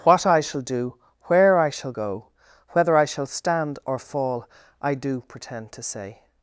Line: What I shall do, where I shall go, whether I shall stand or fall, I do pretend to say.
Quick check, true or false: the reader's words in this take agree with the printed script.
true